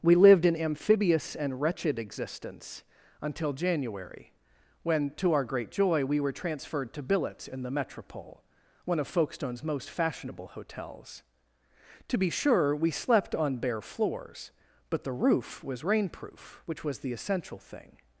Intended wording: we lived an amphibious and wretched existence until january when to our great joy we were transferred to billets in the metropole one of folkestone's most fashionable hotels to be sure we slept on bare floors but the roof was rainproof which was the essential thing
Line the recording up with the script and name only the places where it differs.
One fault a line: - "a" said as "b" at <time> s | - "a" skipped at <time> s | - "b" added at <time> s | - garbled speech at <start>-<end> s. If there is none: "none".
none